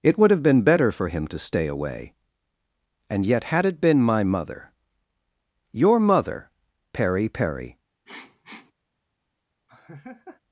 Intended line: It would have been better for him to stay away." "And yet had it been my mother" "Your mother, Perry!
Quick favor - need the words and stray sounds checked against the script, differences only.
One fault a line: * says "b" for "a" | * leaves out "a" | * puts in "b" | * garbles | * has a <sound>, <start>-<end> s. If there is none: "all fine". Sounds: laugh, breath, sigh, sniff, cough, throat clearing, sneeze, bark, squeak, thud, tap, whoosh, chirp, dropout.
* puts in "Perry"
* has a sniff, 8.1-8.7 s
* has a laugh, 9.7-10.4 s